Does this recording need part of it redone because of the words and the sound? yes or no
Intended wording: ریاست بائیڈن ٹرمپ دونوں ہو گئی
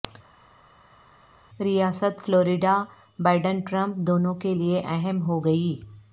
yes